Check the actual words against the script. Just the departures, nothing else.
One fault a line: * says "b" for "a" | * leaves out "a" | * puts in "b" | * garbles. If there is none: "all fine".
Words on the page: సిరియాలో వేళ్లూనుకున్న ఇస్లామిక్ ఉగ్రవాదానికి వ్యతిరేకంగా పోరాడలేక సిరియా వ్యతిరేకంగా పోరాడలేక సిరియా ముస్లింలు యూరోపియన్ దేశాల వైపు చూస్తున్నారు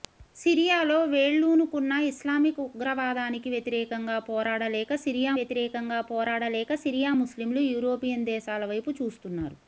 all fine